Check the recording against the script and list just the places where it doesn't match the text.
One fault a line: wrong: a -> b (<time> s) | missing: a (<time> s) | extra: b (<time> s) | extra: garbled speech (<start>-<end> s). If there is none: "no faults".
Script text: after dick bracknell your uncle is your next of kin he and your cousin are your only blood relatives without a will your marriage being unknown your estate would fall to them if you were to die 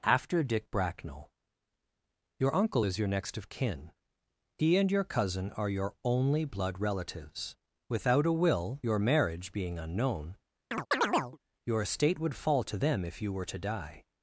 no faults